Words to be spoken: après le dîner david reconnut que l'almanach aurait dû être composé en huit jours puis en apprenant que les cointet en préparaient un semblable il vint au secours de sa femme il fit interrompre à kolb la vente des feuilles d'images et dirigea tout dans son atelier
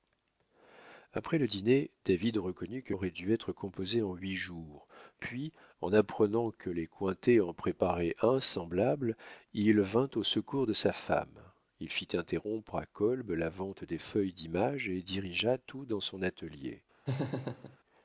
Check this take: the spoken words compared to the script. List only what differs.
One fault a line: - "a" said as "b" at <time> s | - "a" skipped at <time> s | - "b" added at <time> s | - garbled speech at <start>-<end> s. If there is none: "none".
- "l'almanach" skipped at 3.0 s